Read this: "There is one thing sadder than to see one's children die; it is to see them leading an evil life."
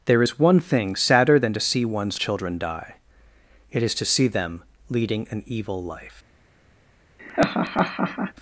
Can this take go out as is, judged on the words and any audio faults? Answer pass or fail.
fail